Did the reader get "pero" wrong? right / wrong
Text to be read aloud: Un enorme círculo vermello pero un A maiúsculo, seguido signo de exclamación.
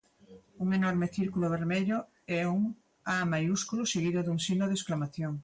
wrong